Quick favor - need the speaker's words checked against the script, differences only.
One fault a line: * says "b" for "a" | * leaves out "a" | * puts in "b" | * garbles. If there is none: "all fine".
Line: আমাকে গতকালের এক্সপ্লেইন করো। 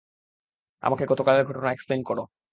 * puts in "ঘটনা"